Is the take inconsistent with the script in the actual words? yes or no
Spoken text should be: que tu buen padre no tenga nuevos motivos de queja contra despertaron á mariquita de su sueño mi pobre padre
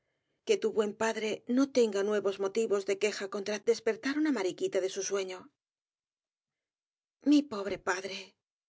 no